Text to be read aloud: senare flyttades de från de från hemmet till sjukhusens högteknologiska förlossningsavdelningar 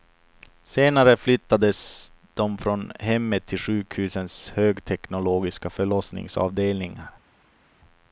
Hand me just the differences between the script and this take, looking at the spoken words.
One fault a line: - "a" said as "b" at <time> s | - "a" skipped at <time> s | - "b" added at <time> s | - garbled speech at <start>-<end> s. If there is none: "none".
- "de från" skipped at 2.9 s